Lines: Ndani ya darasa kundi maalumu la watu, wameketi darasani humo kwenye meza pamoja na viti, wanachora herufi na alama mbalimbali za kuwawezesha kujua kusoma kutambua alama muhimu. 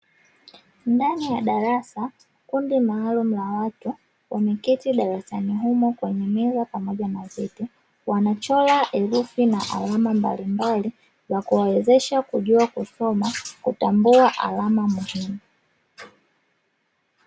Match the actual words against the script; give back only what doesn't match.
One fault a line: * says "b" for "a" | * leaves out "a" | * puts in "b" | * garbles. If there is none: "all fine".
all fine